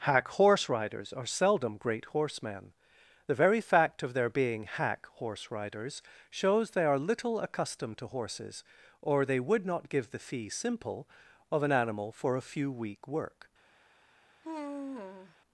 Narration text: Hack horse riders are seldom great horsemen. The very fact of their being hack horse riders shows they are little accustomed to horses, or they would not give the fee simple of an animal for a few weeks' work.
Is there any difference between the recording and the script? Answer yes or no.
yes